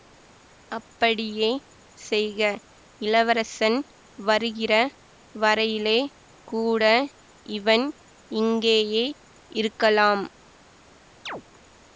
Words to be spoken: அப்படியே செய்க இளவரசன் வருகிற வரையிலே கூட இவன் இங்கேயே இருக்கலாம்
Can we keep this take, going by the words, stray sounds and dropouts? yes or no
no